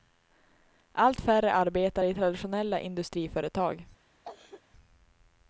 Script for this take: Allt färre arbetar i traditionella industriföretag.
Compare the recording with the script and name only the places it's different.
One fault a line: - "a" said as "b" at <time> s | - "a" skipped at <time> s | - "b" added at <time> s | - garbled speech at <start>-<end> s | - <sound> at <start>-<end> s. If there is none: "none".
- cough at 4.2-4.6 s